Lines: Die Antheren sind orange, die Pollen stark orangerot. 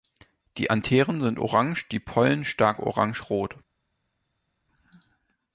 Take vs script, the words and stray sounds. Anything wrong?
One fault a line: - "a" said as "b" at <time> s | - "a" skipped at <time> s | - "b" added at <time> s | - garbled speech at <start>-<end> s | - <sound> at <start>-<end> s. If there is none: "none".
none